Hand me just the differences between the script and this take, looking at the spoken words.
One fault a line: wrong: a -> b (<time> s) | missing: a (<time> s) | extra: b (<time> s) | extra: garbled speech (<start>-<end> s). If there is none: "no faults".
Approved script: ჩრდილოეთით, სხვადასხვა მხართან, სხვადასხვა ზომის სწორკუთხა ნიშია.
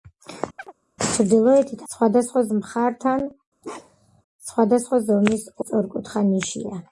no faults